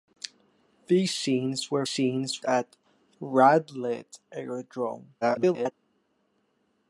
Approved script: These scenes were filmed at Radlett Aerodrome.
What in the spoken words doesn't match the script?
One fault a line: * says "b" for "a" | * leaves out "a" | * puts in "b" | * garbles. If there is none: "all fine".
* says "scenes" for "filmed"
* garbles